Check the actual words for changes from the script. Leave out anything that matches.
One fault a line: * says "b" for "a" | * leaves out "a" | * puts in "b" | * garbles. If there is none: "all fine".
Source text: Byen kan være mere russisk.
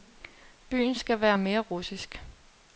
* says "skal" for "kan"